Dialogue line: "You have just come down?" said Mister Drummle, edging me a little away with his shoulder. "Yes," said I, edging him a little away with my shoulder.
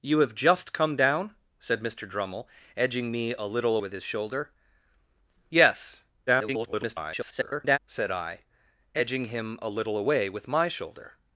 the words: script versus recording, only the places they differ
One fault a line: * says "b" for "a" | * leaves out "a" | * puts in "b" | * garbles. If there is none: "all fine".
* leaves out "away"
* garbles